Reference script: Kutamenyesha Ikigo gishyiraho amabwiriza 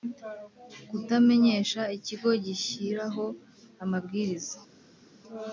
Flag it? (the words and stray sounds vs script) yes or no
no